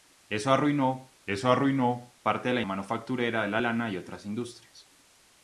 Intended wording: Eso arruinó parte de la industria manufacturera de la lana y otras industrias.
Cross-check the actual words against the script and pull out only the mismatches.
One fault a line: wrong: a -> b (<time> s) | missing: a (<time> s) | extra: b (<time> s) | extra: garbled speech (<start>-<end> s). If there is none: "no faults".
extra: eso arruinó (1.3 s)
missing: industria (2.6 s)